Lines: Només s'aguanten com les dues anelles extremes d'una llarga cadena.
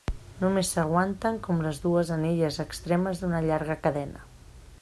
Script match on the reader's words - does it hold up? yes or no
yes